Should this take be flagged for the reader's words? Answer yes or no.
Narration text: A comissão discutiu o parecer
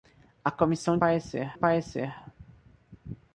yes